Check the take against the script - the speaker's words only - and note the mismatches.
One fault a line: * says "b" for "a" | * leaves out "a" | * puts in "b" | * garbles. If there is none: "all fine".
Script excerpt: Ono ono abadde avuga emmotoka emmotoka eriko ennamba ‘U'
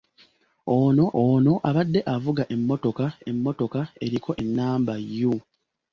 all fine